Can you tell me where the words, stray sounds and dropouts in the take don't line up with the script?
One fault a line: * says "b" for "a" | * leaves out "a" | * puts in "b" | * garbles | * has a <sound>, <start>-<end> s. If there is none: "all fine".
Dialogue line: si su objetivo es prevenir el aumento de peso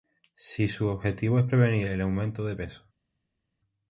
all fine